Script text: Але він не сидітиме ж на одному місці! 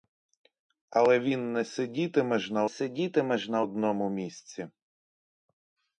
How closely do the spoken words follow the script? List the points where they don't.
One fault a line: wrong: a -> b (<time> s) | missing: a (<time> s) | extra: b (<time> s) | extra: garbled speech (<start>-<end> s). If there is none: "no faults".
extra: сидітиме ж на (2.7 s)